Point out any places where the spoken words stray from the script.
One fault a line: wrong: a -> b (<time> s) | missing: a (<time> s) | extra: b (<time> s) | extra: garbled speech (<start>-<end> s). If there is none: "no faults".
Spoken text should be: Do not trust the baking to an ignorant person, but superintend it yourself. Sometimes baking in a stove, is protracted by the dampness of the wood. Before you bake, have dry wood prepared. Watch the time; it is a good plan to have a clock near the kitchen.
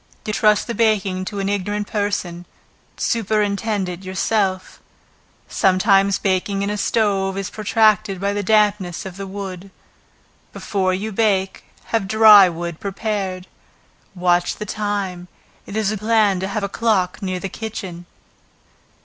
missing: not (0.3 s)
missing: but (2.4 s)
missing: good (15.9 s)